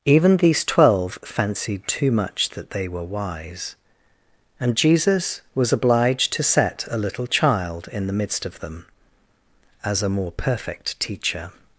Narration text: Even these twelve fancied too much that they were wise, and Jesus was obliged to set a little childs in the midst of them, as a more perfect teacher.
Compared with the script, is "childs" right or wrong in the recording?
wrong